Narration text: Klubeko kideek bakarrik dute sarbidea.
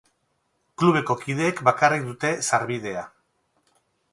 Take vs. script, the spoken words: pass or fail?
pass